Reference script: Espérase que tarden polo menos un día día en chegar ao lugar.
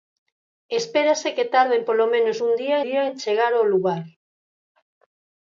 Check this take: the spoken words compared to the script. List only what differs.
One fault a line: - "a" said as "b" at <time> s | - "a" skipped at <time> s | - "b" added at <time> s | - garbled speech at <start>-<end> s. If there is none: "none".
none